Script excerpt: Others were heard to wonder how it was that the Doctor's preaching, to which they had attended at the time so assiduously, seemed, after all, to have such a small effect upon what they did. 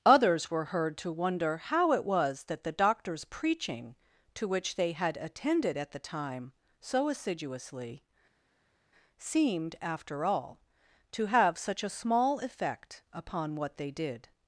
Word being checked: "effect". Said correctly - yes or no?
yes